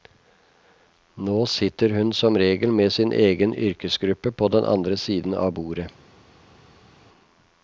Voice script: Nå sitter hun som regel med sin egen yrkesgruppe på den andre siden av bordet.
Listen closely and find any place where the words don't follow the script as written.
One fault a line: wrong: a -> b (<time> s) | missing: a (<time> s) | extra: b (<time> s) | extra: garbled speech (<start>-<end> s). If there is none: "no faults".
no faults